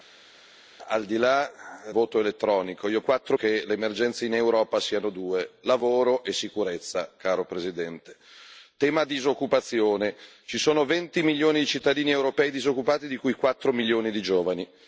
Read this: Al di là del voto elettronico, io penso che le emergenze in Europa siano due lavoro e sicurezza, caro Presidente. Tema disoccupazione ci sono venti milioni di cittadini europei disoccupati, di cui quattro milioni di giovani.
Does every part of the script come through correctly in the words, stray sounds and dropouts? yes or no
no